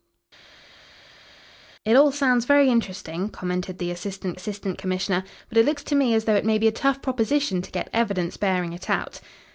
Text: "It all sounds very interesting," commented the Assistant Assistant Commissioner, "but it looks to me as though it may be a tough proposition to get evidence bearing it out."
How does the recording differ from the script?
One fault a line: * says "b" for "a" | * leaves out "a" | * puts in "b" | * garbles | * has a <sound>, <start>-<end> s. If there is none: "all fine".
all fine